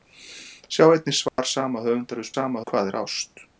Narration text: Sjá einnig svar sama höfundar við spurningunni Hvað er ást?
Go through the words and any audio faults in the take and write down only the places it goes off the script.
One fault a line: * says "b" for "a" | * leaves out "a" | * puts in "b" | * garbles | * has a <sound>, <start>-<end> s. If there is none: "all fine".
* has a dropout, 1.3-1.4 s
* says "sama" for "spurningunni"